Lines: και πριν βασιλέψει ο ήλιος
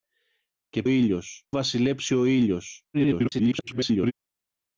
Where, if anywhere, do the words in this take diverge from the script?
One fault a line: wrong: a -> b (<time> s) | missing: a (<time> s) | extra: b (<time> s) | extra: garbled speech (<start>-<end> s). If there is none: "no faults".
wrong: πριν -> ήλιος (0.9 s)
extra: garbled speech (2.9-4.1 s)